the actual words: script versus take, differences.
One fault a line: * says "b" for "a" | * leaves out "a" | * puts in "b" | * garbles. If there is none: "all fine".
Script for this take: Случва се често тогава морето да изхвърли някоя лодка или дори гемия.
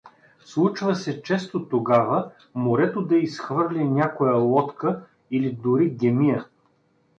all fine